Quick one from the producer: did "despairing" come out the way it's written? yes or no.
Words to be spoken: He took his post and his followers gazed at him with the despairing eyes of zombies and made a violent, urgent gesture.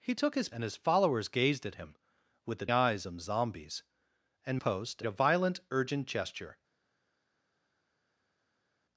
no